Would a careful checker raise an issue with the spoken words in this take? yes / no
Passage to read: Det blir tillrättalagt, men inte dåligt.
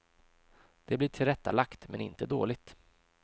no